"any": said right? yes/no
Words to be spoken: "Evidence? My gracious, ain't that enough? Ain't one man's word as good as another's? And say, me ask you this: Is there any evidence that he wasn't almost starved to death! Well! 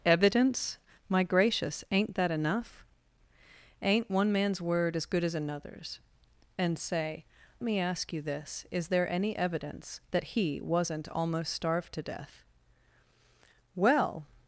yes